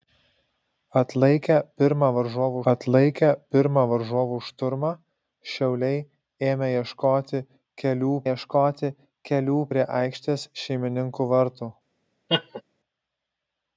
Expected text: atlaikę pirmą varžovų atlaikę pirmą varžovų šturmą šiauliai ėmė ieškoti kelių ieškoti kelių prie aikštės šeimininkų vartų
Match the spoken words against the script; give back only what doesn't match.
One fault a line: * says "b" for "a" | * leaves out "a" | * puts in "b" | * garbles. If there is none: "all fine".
all fine